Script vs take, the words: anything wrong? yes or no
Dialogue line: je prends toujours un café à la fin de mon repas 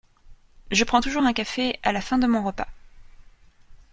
no